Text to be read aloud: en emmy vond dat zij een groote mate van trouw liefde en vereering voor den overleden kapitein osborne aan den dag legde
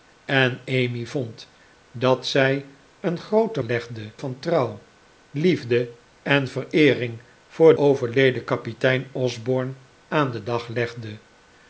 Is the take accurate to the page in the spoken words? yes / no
no